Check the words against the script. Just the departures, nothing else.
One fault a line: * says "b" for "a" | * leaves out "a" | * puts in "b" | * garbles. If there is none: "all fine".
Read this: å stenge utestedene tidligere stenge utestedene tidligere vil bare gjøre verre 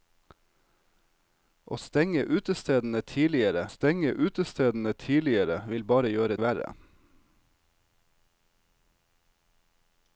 all fine